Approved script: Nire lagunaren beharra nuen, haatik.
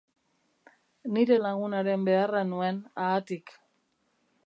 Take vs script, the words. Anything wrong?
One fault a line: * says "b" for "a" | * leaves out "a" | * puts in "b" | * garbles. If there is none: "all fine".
all fine